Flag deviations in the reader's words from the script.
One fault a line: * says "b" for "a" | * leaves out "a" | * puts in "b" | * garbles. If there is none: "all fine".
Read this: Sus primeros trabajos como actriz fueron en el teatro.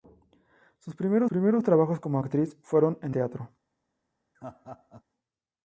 * puts in "primeros"
* leaves out "el"